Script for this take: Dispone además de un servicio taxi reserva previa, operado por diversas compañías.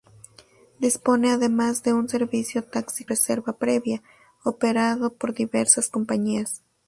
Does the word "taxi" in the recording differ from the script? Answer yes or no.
no